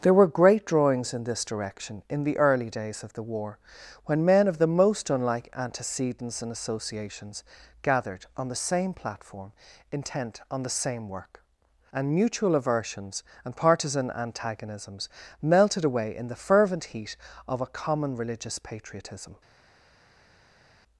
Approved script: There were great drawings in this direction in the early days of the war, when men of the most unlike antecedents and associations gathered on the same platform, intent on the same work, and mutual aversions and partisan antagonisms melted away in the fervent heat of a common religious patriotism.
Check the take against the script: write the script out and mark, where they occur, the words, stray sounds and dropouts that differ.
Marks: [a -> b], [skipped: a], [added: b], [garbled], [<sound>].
There were great drawings in this direction in the early days of the war, when men of the most unlike antecedents and associations gathered on the same platform, intent on the same work, and mutual aversions and partisan antagonisms melted away in the fervent heat of a common religious patriotism.